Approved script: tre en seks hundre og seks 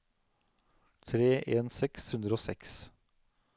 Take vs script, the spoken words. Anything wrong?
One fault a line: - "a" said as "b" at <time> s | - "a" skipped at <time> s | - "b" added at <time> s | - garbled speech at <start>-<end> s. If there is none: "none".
none